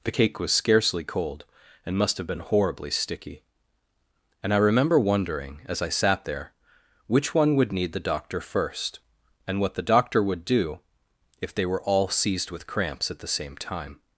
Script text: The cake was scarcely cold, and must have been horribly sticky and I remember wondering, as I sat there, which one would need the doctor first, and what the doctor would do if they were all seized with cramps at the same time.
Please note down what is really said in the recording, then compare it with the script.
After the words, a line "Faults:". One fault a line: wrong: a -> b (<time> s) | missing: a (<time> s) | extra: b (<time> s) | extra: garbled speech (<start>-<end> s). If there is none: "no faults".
The cake was scarcely cold, and must have been horribly sticky and I remember wondering, as I sat there, which one would need the doctor first, and what the doctor would do if they were all seized with cramps at the same time.
Faults:
no faults